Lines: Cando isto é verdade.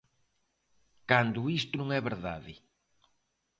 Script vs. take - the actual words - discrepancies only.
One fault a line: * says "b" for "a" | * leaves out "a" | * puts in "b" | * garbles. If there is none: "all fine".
* puts in "non"